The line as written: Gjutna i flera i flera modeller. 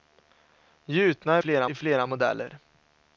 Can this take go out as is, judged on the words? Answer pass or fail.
pass